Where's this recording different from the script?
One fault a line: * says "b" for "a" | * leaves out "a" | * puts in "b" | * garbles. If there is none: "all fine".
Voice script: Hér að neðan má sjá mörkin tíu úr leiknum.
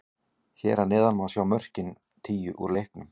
all fine